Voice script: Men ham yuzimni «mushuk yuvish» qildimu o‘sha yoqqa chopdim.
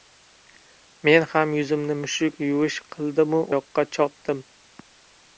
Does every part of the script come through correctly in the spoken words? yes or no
no